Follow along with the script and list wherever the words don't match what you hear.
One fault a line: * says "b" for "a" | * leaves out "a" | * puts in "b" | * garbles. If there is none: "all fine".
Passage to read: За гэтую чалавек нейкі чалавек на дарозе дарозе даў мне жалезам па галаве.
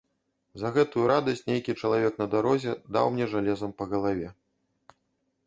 * says "радасць" for "чалавек"
* leaves out "дарозе"